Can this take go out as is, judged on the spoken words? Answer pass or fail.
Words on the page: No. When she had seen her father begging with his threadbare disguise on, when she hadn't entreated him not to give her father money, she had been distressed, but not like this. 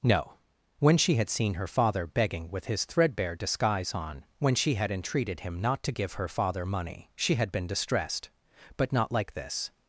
fail